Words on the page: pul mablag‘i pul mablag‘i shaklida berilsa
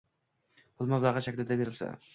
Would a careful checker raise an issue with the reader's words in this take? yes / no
yes